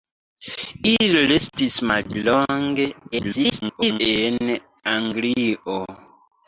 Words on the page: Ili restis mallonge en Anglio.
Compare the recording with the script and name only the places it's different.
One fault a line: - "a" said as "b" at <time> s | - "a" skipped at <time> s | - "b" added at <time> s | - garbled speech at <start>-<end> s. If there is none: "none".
- garbled speech at 3.1-4.0 s